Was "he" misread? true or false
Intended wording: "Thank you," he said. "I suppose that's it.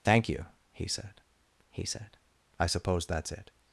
false